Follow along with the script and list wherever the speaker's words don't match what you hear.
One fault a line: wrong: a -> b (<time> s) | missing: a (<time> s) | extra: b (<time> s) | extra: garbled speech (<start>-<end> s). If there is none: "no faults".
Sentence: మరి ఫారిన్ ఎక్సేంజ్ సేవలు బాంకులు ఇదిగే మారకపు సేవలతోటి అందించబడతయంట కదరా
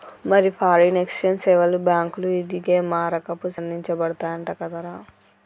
missing: సేవలతోటి (3.5 s)